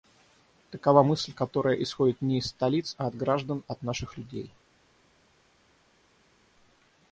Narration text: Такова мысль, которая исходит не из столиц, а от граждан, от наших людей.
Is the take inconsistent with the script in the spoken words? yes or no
no